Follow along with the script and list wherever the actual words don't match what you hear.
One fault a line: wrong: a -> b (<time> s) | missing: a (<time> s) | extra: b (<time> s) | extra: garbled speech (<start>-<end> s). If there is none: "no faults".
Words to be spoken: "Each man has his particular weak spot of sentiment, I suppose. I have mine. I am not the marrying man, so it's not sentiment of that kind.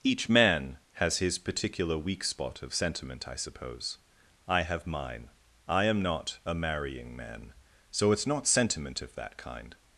wrong: the -> a (6.4 s)